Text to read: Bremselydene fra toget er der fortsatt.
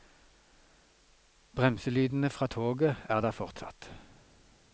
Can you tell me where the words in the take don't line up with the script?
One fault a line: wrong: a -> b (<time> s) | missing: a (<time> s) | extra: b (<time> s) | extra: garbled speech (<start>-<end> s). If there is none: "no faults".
no faults